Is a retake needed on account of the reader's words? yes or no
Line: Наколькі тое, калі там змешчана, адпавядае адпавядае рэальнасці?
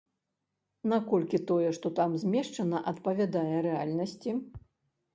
yes